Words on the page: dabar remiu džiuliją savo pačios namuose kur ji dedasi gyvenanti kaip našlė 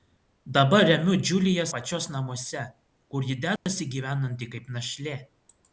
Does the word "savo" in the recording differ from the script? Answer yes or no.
yes